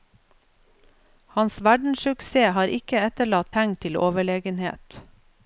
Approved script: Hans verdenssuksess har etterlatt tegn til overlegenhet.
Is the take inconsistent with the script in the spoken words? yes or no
yes